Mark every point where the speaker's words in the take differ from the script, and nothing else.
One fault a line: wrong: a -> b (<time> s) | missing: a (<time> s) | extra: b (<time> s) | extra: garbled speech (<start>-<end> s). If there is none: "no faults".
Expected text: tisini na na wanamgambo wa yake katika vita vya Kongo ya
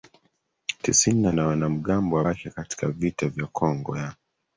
no faults